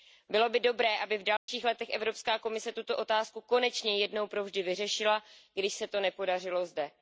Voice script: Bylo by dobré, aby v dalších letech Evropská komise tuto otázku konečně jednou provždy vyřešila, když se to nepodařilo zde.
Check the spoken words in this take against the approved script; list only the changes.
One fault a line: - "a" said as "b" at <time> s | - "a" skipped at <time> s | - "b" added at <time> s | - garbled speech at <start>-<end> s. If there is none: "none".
none